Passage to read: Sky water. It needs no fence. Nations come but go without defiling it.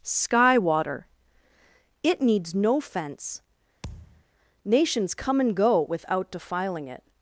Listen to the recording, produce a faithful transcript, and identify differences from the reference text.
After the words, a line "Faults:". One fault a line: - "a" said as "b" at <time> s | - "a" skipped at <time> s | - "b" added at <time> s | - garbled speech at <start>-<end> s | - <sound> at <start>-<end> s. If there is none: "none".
Sky water. It needs no fence. Nations come and go without defiling it.
Faults:
- thud at 3.8-4.2 s
- "but" said as "and" at 5.4 s